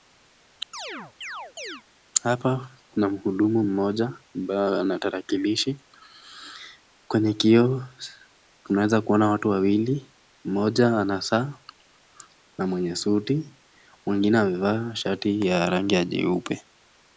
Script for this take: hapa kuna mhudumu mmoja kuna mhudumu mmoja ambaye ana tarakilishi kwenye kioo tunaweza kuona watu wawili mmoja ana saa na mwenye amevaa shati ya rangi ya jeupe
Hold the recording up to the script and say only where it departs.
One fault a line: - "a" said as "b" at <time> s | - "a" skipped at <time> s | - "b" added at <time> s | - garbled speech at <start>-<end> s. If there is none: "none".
- "kuna mhudumu mmoja" skipped at 4.1 s
- "suti mwingine" added at 13.0 s